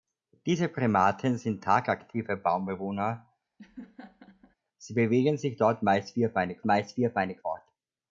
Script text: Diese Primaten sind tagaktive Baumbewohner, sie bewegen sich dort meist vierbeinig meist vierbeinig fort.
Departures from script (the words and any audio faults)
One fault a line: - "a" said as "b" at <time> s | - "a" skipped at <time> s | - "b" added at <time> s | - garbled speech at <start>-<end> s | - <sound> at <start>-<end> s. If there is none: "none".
- laugh at 3.6-4.6 s